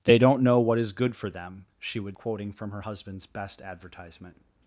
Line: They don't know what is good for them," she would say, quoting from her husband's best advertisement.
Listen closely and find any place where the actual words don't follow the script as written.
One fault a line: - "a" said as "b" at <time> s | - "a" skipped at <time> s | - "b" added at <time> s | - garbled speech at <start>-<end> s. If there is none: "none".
- "say" skipped at 2.2 s